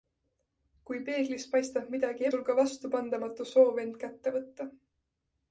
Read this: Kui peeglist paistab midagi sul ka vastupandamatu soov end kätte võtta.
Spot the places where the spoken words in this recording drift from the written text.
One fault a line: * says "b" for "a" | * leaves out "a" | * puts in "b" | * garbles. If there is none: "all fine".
all fine